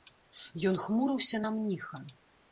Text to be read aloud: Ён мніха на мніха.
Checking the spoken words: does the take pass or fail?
fail